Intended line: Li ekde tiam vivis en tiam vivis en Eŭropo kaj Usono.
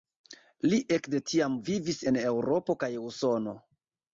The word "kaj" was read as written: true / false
true